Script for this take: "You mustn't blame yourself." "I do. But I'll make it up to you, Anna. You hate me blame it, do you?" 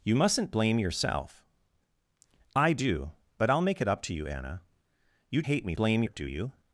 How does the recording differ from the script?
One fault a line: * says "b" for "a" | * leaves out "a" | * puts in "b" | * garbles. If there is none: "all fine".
all fine